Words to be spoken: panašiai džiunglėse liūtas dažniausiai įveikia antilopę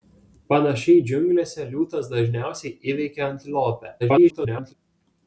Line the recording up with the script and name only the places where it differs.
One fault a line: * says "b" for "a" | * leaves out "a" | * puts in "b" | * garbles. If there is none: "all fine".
* garbles